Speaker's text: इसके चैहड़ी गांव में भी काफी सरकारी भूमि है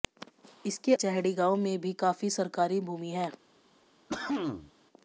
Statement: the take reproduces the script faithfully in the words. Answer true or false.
true